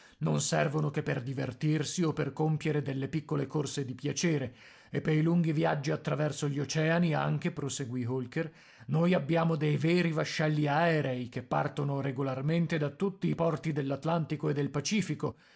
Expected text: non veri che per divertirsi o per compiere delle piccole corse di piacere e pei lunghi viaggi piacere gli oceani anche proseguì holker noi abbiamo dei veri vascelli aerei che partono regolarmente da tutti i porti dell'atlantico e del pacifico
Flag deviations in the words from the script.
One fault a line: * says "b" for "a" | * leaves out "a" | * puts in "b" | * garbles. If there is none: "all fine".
* says "servono" for "veri"
* says "attraverso" for "piacere"